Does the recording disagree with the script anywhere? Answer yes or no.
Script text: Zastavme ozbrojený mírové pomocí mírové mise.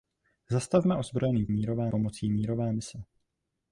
no